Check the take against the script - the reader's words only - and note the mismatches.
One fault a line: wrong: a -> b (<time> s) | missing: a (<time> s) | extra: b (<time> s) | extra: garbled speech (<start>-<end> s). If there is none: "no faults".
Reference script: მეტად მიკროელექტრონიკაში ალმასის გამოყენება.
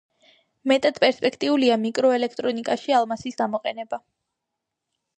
extra: პერსპექტიულია (1.0 s)